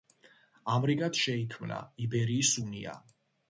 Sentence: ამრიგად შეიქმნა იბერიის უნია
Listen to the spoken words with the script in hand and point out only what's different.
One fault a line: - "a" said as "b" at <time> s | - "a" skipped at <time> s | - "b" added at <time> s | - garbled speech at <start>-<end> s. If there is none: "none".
none